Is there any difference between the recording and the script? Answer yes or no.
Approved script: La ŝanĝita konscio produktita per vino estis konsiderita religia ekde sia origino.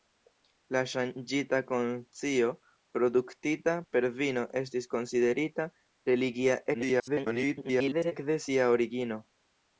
yes